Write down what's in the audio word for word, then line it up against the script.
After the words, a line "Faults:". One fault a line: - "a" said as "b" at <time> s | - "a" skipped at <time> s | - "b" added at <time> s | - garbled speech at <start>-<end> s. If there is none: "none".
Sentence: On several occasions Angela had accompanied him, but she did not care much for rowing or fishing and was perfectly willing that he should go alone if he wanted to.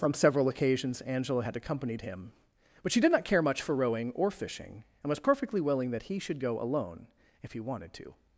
From several occasions Angela had accompanied him, but she did not care much for rowing or fishing and was perfectly willing that he should go alone if he wanted to.
Faults:
- "On" said as "From" at 0.0 s